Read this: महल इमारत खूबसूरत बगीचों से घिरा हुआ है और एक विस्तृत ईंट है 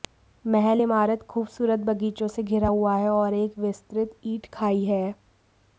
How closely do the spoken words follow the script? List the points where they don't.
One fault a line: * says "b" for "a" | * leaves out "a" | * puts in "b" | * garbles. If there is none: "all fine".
* puts in "खाई"